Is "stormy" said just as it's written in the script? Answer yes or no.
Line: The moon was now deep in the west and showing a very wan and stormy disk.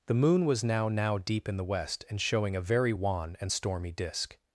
yes